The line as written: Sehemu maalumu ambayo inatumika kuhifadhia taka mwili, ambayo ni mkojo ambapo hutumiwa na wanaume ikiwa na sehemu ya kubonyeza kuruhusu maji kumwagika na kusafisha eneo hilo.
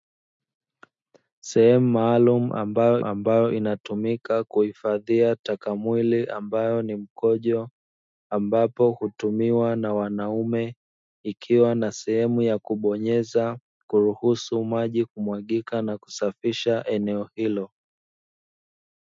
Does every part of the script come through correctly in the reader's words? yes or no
no